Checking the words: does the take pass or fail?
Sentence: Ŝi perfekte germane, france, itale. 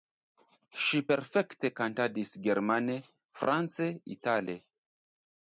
fail